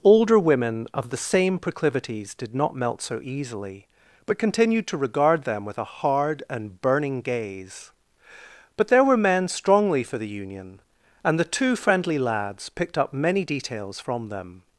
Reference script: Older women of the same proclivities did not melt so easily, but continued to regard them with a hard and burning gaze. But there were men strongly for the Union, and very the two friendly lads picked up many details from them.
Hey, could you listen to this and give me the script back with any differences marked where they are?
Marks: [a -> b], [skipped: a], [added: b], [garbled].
Older women of the same proclivities did not melt so easily, but continued to regard them with a hard and burning gaze. But there were men strongly for the Union, and [skipped: very] the two friendly lads picked up many details from them.